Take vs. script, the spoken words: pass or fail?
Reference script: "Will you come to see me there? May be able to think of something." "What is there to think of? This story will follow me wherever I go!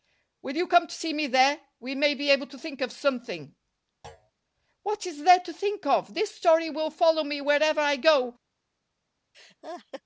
fail